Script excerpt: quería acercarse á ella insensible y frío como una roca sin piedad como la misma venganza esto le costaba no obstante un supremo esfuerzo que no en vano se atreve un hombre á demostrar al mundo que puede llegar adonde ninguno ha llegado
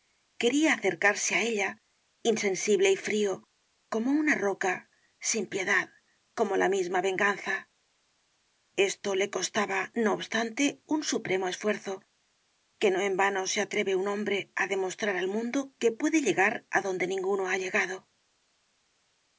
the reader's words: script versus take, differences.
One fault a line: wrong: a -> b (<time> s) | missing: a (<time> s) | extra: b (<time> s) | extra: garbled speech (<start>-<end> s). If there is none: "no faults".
no faults